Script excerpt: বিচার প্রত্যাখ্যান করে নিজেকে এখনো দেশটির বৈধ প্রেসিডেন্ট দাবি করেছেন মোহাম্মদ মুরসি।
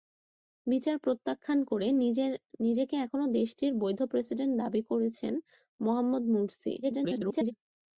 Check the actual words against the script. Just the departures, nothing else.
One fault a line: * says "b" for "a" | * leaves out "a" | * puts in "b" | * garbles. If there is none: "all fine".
* garbles